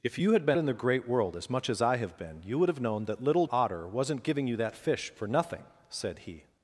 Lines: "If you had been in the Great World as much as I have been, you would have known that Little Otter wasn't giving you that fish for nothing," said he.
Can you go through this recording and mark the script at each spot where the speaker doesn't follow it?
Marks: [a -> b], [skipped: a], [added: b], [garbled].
"If you had been in the Great World as much as I have been, you would have known that Little Otter wasn't giving you that fish for nothing," said he.